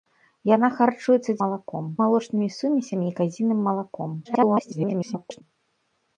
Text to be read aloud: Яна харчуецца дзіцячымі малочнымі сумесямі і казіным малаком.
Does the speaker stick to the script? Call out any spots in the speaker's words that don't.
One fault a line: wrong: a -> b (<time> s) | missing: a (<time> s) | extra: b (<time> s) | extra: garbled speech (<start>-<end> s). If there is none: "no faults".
wrong: дзіцячымі -> малаком (1.4 s)
extra: garbled speech (4.2-5.4 s)